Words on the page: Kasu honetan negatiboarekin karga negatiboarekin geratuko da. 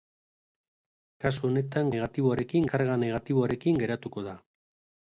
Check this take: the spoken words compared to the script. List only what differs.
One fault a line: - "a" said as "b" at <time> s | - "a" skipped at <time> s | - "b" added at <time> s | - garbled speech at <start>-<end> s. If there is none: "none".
none